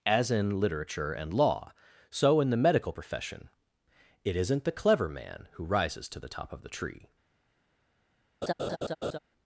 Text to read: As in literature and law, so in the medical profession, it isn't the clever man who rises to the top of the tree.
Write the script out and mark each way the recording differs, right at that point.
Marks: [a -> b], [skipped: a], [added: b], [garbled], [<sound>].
As in literature and law, so in the medical profession, it isn't the clever man who rises to the top of the tree. [laugh]